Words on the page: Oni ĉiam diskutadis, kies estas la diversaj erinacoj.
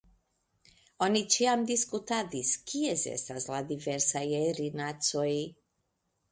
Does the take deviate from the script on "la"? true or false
false